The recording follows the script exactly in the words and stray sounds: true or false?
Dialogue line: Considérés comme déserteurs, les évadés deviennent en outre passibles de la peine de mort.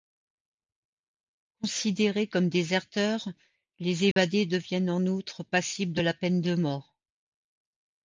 false